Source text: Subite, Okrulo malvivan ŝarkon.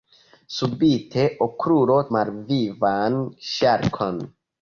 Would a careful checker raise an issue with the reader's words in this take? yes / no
no